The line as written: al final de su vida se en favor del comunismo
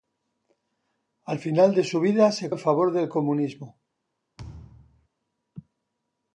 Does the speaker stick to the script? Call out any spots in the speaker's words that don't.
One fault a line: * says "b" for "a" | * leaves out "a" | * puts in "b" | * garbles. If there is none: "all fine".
all fine